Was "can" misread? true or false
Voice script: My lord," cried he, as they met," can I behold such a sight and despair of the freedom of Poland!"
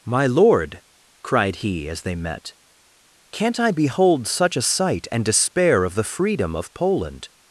true